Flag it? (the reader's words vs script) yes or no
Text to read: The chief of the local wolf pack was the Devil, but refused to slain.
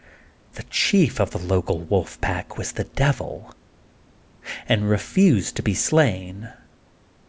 yes